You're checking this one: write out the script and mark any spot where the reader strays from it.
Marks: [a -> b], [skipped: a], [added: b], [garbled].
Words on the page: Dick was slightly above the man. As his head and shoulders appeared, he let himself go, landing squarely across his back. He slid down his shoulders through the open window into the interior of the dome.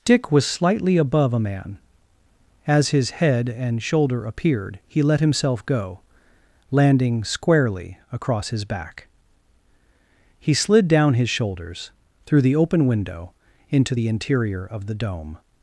Dick was slightly above [the -> a] man. As his head and [shoulders -> shoulder] appeared, he let himself go, landing squarely across his back. He slid down his shoulders through the open window into the interior of the dome.